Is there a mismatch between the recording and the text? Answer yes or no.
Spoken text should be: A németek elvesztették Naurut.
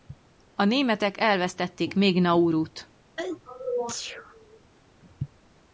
yes